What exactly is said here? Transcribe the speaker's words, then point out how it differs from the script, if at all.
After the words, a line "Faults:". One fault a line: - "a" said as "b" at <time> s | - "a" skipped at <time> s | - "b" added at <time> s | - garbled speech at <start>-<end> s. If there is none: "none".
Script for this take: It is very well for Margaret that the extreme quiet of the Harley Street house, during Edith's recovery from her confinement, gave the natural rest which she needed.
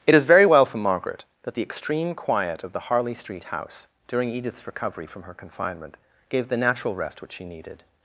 It is very well for Margaret that the extreme quiet of the Harley Street house, during Edith's recovery from her confinement, gave the natural rest which she needed.
Faults:
none